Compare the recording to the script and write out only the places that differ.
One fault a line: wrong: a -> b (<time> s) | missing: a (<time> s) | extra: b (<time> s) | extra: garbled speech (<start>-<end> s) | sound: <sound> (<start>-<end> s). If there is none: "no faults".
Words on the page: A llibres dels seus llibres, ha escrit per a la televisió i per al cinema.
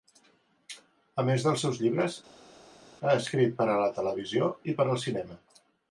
wrong: llibres -> més (1.3 s)